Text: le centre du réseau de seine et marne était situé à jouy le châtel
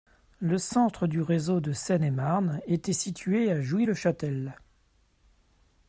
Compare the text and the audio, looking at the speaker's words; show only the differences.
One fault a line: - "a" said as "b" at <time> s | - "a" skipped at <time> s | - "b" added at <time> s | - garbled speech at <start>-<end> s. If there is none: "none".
none